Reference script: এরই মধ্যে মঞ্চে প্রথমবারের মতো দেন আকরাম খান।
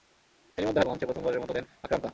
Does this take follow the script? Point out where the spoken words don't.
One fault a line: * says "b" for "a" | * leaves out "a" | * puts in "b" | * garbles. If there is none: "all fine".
all fine